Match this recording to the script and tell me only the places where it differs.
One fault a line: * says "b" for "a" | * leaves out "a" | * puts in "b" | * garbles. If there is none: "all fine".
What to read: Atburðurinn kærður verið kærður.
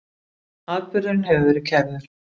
* says "hefur" for "kærður"